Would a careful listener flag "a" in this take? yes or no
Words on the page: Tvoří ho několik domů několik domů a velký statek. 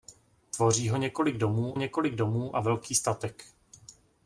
no